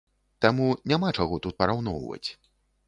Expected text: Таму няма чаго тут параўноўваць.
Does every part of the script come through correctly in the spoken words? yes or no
yes